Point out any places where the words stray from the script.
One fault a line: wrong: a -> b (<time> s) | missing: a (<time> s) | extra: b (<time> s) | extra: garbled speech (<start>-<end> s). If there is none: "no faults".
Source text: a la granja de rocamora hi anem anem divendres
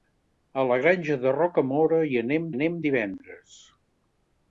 no faults